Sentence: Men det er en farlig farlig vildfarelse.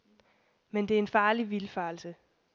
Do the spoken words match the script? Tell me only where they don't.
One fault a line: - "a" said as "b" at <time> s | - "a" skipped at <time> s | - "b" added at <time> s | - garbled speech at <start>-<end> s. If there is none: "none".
- "farlig" skipped at 1.5 s